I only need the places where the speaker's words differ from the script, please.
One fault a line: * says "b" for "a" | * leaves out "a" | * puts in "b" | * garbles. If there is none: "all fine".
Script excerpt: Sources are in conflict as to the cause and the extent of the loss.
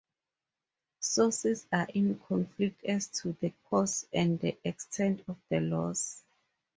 all fine